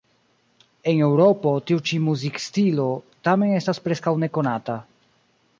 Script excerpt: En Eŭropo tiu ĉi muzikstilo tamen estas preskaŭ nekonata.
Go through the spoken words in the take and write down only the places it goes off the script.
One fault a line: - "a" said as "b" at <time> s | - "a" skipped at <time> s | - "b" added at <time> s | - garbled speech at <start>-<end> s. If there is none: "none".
none